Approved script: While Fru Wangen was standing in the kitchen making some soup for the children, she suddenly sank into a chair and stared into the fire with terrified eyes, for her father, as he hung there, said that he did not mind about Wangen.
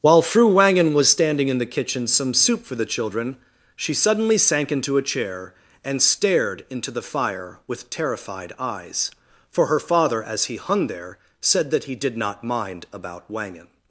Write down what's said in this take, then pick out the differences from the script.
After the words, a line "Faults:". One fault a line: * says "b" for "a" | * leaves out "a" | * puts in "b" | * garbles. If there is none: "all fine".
While Fru Wangen was standing in the kitchen some soup for the children, she suddenly sank into a chair and stared into the fire with terrified eyes, for her father, as he hung there, said that he did not mind about Wangen.
Faults:
* leaves out "making"